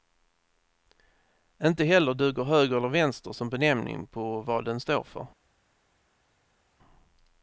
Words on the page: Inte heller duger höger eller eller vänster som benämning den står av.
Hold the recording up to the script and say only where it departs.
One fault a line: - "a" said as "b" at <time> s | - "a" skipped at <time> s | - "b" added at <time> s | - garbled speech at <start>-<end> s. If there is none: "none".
- "eller" skipped at 2.9 s
- "på vad" added at 4.1 s
- "av" said as "för" at 5.0 s